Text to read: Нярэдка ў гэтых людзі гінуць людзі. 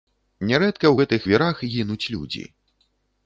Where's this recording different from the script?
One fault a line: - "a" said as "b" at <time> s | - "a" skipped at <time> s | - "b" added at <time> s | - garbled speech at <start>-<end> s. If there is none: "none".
- "людзі" said as "вірах" at 1.3 s